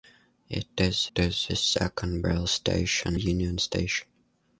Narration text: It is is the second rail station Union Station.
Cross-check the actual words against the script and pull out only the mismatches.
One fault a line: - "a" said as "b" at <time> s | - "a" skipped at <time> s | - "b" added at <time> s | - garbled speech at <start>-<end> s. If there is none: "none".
none